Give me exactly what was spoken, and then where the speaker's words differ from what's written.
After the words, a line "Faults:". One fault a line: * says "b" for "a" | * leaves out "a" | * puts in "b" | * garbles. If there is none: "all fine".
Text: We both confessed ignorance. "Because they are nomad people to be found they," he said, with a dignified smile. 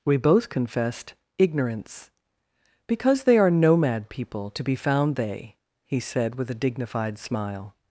We both confessed ignorance. "Because they are nomad people to be found they," he said, with a dignified smile.
Faults:
all fine